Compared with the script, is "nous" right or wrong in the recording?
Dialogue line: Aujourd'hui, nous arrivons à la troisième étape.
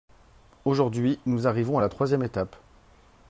right